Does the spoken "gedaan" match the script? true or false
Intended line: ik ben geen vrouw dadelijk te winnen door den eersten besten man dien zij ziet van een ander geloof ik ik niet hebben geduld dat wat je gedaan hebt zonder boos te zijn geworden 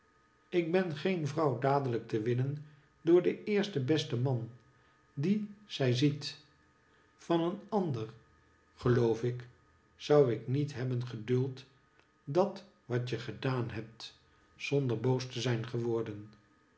true